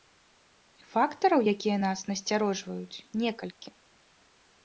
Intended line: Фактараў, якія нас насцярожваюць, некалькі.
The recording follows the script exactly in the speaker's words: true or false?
true